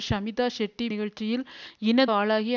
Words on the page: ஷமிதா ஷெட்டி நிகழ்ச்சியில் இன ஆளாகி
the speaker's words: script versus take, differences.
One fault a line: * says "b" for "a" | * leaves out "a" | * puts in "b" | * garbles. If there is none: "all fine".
all fine